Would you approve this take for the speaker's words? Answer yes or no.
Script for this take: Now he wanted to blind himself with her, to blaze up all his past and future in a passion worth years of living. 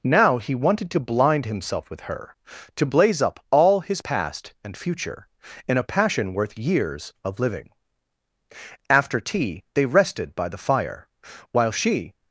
no